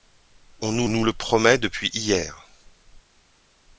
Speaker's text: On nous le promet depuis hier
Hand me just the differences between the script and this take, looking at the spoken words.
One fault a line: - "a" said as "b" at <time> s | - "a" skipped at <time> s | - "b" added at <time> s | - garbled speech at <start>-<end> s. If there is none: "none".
- "nous" added at 0.9 s